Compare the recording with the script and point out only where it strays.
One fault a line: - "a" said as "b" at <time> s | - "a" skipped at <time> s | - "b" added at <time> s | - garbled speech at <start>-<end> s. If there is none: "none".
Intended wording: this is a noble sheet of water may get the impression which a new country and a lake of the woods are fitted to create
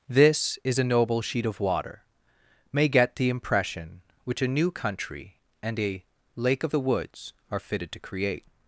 none